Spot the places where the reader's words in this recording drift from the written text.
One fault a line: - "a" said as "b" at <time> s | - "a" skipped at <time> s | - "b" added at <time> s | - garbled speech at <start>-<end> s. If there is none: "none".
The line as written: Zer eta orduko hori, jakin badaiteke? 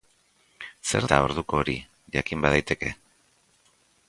none